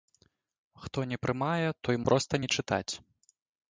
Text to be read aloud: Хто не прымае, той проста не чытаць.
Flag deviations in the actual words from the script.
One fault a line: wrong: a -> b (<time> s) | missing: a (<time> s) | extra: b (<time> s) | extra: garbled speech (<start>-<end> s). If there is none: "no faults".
no faults